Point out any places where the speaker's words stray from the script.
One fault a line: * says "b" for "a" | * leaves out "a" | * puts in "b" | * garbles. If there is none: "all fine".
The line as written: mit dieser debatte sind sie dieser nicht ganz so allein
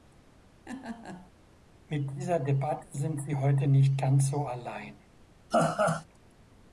* says "heute" for "dieser"